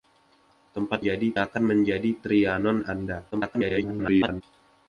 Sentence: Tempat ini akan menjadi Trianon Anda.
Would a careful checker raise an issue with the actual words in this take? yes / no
yes